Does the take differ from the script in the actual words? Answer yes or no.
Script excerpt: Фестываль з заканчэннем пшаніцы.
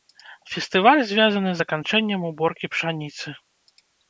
yes